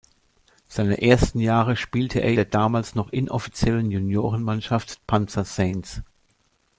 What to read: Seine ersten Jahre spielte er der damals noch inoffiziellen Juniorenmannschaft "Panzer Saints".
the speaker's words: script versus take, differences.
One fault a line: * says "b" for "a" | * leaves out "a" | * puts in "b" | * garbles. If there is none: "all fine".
all fine